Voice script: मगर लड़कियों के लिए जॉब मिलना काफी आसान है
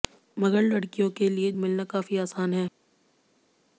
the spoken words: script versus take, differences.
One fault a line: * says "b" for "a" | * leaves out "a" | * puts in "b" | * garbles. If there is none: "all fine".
* leaves out "जॉब"